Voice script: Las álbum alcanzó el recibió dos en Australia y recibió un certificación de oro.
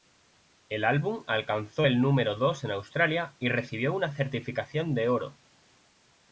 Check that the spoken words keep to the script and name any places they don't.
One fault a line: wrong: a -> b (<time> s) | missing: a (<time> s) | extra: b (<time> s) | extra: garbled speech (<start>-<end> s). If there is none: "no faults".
wrong: Las -> El (0.7 s)
wrong: recibió -> número (2.0 s)
wrong: un -> una (3.9 s)